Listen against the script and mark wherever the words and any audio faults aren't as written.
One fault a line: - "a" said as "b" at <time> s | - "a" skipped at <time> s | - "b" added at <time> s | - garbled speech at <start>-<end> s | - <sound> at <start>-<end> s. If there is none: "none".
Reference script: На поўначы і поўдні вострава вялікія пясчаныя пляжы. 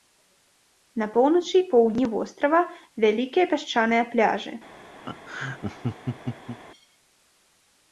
- laugh at 5.0-6.6 s